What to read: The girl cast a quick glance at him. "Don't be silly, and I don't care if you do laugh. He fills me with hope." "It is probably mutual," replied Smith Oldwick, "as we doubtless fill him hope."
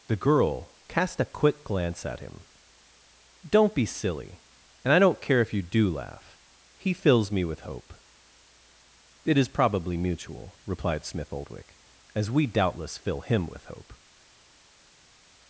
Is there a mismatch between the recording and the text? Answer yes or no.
yes